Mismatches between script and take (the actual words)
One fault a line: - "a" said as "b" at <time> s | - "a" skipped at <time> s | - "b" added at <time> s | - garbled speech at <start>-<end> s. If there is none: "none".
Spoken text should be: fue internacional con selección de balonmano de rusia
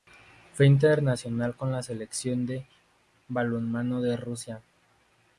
- "la" added at 1.7 s